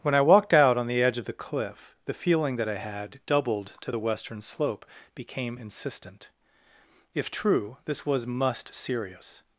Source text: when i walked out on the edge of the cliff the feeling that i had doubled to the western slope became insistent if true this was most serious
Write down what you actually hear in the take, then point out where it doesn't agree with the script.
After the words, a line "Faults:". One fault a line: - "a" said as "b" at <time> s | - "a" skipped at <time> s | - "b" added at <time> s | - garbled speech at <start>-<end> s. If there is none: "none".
when i walked out on the edge of the cliff the feeling that i had doubled to the western slope became insistent if true this was must serious
Faults:
- "most" said as "must" at 8.3 s